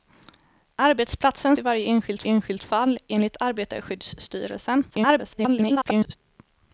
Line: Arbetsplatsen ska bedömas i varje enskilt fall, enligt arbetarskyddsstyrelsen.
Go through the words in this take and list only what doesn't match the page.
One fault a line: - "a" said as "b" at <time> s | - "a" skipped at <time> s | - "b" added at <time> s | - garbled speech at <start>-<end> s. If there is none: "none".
- "ska bedömas" skipped at 1.6 s
- "enskilt" added at 2.2 s
- garbled speech at 4.9-6.2 s